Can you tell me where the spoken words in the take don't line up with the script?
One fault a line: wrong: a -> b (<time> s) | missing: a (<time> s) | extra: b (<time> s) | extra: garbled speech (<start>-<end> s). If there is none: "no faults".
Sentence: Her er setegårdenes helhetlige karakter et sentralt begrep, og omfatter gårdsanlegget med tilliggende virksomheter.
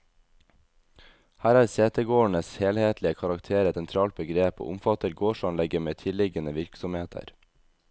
missing: et (3.7 s)